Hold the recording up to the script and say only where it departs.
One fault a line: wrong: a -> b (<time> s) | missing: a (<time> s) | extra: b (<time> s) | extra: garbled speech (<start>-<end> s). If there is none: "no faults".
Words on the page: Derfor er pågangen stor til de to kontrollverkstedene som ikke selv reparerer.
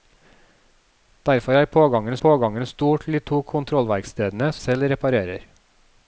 extra: pågangen (2.2 s)
missing: som ikke (4.5 s)